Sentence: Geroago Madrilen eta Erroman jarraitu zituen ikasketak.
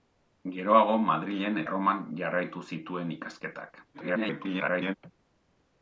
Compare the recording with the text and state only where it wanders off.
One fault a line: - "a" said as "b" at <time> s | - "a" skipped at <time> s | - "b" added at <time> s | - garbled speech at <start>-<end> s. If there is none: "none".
- "eta" skipped at 1.6 s
- garbled speech at 3.9-4.9 s